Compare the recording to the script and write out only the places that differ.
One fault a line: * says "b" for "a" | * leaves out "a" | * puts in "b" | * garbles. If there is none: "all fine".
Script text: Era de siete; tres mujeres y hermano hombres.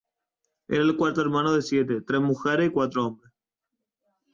* puts in "el cuarto hermano"
* says "cuatro" for "hermano"